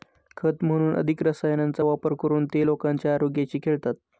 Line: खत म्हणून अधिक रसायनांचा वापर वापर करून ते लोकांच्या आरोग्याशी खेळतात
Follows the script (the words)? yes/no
no